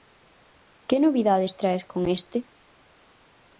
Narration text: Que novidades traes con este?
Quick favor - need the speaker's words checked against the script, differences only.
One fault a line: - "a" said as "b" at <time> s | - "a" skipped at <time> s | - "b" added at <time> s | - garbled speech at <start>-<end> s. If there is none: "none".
none